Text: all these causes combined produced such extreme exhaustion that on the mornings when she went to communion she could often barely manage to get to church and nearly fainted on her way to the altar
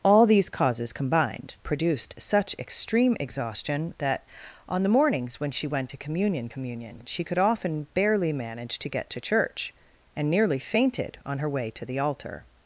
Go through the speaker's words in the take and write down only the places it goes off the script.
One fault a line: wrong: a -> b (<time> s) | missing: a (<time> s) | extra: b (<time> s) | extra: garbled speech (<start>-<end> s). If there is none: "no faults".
extra: communion (6.5 s)